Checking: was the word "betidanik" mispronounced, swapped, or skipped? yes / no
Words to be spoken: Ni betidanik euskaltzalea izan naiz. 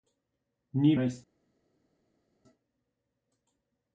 yes